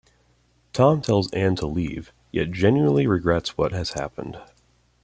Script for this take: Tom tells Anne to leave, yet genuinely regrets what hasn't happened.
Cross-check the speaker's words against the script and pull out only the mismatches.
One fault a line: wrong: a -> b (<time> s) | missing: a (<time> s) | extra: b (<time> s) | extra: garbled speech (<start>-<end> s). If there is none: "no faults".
wrong: hasn't -> has (3.7 s)